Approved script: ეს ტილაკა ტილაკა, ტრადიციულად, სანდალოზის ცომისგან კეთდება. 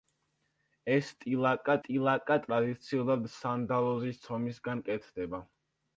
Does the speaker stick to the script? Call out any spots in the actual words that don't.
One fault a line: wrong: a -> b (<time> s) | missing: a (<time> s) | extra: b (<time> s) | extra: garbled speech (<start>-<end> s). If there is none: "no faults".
no faults